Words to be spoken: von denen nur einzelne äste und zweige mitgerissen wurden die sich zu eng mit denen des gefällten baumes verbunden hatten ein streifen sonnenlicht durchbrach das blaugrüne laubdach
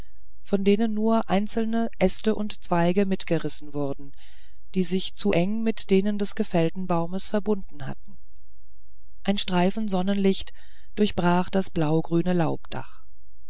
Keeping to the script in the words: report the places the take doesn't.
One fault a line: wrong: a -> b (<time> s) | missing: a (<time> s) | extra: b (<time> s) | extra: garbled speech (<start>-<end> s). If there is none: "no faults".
no faults